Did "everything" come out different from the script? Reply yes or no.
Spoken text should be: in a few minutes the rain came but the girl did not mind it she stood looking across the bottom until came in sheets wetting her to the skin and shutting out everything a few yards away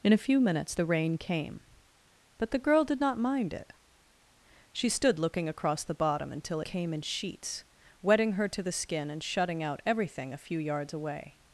no